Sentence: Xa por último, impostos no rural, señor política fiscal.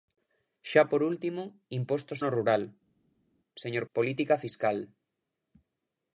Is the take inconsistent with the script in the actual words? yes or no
no